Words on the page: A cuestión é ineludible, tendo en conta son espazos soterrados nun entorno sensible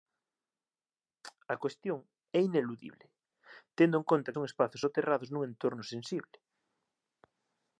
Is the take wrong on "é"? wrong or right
right